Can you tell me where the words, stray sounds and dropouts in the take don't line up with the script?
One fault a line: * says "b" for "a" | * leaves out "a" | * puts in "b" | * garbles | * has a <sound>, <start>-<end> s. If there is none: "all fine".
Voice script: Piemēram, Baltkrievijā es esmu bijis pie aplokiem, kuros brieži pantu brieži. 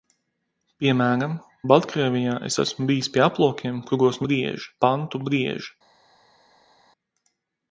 all fine